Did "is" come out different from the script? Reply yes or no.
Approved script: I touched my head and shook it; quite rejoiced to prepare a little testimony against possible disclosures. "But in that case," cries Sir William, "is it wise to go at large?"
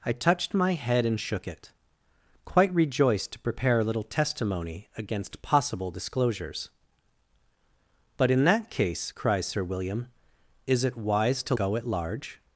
no